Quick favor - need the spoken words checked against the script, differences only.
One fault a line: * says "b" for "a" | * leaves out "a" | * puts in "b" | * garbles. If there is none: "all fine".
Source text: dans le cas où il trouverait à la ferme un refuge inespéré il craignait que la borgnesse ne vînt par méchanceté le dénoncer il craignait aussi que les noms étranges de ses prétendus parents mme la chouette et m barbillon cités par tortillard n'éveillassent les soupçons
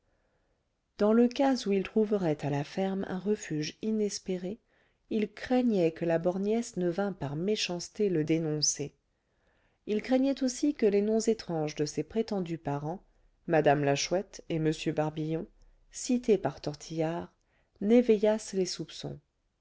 all fine